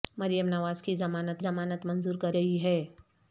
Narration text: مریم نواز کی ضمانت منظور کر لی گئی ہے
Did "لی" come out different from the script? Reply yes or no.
yes